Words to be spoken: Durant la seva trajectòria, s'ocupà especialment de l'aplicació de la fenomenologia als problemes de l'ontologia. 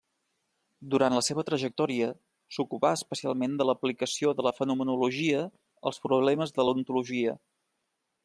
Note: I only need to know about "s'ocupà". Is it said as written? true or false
true